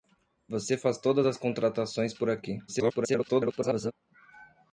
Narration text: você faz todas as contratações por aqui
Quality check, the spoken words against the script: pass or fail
fail